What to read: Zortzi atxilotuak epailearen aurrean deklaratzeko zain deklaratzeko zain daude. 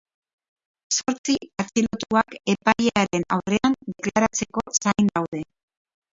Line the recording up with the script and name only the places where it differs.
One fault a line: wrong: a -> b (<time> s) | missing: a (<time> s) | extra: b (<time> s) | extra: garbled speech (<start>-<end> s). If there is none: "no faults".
missing: deklaratzeko zain (5.1 s)